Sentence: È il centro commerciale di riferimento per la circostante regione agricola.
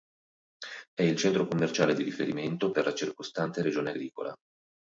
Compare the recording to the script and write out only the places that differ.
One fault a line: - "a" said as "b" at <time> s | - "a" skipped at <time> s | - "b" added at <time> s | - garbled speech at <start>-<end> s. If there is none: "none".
none